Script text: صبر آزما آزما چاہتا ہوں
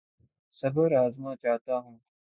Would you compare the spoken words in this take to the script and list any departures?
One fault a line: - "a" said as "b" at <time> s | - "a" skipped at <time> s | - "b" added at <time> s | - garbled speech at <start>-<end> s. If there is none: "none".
- "آزما" skipped at 1.3 s